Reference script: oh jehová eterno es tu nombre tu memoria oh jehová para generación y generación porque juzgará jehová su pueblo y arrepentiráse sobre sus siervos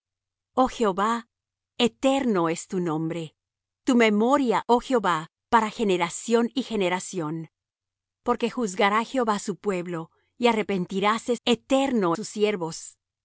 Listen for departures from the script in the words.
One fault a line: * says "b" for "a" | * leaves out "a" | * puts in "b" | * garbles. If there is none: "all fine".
* says "eterno" for "sobre"